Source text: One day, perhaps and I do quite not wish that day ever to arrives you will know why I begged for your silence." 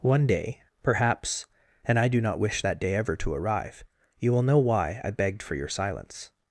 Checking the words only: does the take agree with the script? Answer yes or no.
no